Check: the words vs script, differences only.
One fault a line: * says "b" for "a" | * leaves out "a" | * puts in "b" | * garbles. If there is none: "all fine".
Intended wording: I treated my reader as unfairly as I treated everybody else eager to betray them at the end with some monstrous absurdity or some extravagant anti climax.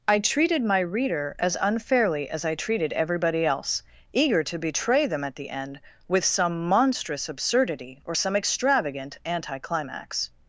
all fine